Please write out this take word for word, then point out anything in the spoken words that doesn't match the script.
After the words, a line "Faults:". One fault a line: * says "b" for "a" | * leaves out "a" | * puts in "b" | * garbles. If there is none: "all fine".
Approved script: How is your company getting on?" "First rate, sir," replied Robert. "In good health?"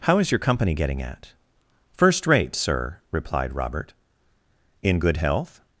How is your company getting at?" "First rate, sir," replied Robert. "In good health?"
Faults:
* says "at" for "on"